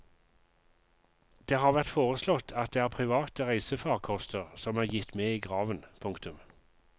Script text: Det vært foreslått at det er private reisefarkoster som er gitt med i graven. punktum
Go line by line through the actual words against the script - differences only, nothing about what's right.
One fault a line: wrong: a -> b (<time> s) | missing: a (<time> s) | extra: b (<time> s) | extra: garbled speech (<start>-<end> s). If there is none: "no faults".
extra: har (1.6 s)